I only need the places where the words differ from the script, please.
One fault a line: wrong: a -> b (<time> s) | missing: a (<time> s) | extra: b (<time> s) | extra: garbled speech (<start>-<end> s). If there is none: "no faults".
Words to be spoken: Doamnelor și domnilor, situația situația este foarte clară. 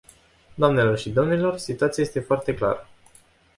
missing: situația (2.0 s)